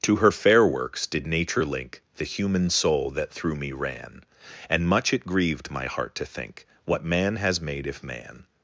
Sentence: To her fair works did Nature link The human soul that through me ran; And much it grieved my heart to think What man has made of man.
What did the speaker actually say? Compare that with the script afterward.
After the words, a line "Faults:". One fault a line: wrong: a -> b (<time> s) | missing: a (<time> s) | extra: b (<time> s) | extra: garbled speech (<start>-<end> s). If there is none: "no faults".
To her fair works did Nature link The human soul that through me ran; And much it grieved my heart to think What man has made if man.
Faults:
wrong: of -> if (7.9 s)